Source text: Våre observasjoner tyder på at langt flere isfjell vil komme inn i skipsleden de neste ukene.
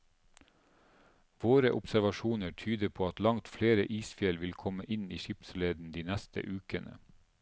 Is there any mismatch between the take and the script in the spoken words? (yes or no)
no